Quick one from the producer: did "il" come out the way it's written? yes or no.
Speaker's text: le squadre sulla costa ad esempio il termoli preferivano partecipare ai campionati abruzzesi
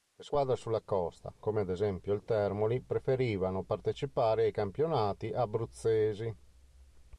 yes